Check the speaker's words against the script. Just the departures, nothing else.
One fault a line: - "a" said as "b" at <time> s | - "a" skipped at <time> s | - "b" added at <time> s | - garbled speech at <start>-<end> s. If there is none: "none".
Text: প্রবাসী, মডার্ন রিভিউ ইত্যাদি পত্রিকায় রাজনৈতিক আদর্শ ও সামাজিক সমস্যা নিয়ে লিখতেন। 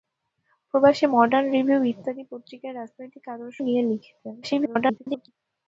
- "ও সামাজিক সমস্যা" skipped at 3.6 s
- garbled speech at 4.4-5.3 s